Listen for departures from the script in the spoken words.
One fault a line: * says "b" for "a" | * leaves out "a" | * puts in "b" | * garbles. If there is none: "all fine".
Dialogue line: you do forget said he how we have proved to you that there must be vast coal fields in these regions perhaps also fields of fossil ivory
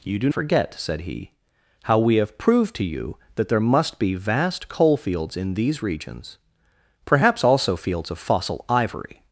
all fine